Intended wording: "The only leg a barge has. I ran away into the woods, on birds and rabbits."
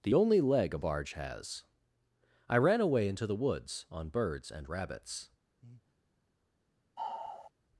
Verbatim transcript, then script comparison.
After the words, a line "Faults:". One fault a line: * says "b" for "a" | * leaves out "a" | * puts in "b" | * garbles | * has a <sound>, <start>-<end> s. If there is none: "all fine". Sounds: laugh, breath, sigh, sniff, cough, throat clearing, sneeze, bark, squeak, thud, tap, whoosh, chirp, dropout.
"The only leg a barge has. I ran away into the woods, on birds and rabbits."
Faults:
* has a breath, 5.6-6.0 s
* has a sigh, 7.0-7.5 s